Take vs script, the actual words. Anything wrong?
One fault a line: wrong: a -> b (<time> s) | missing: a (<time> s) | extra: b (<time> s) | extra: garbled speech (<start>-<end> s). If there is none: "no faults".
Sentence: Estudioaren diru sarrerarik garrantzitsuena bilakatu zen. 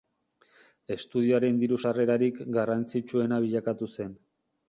no faults